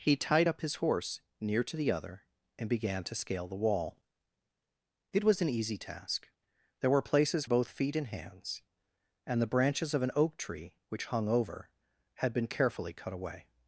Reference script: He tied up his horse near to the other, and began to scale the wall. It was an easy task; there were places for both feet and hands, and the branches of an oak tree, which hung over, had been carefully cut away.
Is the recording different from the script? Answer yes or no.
yes